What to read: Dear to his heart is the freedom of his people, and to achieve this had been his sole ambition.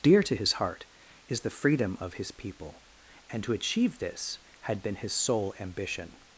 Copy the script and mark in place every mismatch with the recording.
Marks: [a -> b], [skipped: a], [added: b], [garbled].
Dear to his heart is the freedom of his people, and to achieve this had been his sole ambition.